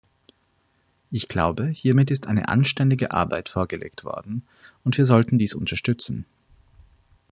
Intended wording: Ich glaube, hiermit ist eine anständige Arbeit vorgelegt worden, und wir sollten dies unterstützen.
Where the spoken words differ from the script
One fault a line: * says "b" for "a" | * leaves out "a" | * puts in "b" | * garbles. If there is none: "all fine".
all fine